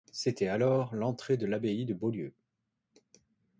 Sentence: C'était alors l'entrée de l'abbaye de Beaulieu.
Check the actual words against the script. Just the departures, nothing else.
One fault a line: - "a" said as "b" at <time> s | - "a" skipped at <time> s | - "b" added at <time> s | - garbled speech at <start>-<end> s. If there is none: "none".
none